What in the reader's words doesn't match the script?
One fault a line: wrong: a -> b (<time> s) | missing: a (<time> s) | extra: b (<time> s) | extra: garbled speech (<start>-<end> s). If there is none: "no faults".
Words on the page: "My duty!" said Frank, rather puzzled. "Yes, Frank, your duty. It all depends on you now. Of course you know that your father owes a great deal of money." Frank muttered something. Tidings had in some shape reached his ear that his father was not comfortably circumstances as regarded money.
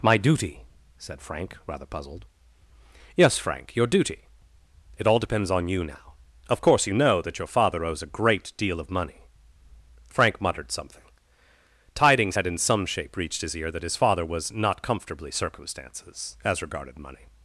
no faults